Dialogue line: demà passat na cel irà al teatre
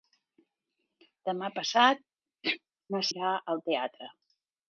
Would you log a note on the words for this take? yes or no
yes